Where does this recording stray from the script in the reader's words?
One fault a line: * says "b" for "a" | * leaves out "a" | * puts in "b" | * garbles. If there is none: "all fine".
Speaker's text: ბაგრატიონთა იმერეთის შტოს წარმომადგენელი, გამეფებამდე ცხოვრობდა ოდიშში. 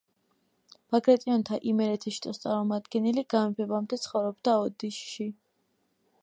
all fine